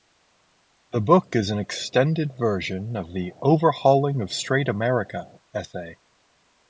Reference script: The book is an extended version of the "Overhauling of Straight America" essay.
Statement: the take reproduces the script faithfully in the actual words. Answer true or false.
true